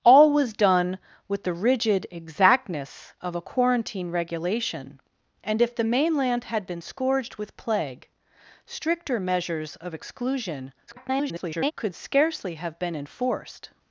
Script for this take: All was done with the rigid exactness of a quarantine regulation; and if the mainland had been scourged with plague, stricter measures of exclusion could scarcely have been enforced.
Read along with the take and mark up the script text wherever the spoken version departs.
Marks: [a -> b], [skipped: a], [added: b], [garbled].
All was done with the rigid exactness of a quarantine regulation; and if the mainland had been scourged with plague, stricter measures of exclusion [garbled] could scarcely have been enforced.